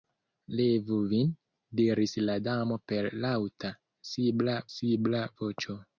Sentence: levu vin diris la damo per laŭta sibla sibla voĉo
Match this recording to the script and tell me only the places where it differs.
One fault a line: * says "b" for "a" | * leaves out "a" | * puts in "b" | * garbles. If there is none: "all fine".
all fine